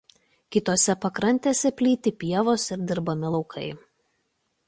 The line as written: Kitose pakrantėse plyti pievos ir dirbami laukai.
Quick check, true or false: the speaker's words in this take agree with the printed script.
true